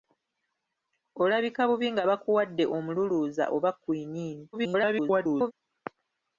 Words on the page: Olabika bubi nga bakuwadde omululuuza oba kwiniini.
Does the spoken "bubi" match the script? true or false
true